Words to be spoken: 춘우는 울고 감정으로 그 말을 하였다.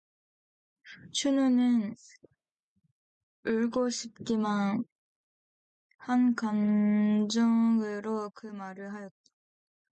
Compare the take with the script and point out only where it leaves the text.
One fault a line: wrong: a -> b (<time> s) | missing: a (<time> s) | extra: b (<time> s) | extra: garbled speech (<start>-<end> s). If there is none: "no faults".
extra: 싶기만 한 (3.9 s)